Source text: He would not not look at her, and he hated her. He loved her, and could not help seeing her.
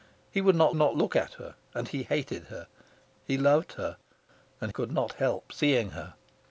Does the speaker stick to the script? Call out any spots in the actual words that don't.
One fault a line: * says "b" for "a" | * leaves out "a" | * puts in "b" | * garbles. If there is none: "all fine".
all fine